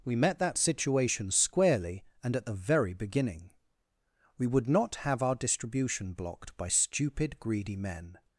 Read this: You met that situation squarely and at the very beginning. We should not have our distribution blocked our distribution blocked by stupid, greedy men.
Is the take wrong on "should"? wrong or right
wrong